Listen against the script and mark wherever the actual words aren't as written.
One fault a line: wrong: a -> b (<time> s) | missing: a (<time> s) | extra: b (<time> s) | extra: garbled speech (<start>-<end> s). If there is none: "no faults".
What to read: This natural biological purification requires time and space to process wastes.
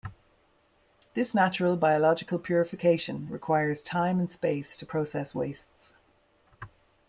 no faults